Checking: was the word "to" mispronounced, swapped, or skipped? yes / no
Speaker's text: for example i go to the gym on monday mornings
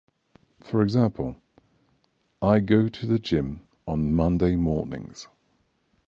no